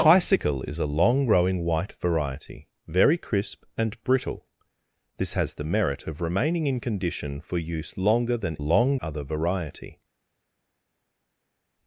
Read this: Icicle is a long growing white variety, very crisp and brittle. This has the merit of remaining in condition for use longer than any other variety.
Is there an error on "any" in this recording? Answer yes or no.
yes